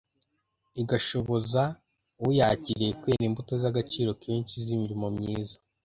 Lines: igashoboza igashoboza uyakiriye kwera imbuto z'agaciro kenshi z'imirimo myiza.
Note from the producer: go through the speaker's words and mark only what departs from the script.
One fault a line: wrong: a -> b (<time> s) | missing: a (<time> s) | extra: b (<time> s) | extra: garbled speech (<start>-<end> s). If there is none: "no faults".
missing: igashoboza (1.6 s)